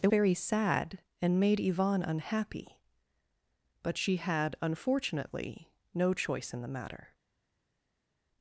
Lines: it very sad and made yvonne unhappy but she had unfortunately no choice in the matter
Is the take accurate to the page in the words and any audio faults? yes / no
yes